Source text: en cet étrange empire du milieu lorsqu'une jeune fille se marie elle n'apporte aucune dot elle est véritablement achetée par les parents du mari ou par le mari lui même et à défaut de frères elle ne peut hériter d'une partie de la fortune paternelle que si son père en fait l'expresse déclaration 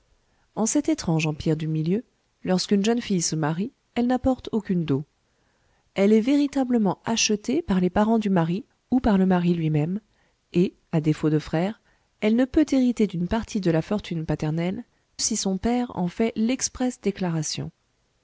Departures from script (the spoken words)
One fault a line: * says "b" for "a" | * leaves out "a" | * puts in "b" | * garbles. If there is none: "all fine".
* leaves out "que"